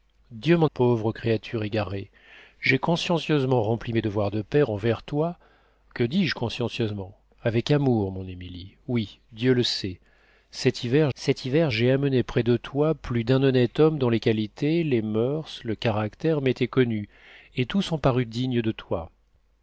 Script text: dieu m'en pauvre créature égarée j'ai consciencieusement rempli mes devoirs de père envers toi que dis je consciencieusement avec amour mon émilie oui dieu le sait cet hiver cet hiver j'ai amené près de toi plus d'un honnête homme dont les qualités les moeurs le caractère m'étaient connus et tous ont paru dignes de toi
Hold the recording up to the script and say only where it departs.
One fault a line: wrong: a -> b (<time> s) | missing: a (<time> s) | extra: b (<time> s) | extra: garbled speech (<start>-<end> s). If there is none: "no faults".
no faults